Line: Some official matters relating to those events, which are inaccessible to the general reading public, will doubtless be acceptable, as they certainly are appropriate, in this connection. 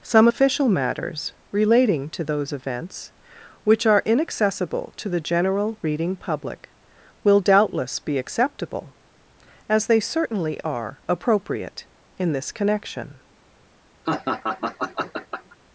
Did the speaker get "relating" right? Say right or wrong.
right